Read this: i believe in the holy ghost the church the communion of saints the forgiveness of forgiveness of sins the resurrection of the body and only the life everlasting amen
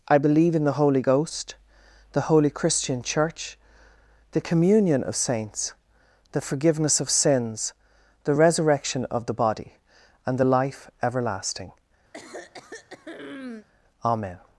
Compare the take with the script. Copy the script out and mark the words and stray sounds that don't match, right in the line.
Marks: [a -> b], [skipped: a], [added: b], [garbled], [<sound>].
i believe in the holy ghost the [added: holy christian] church the communion of saints the forgiveness of [skipped: forgiveness of] sins the resurrection of the body and [skipped: only] the life everlasting [throat clearing] amen